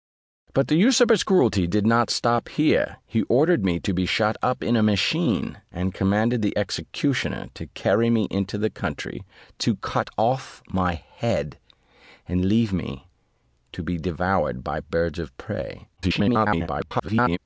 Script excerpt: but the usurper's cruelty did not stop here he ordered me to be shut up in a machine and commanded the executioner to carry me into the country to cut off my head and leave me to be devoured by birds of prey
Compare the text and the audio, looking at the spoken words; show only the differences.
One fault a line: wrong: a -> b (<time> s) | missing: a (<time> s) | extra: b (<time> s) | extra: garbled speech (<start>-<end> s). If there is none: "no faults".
extra: garbled speech (16.0-17.4 s)